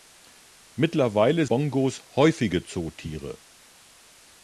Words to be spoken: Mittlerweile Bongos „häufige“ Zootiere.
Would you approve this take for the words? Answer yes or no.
yes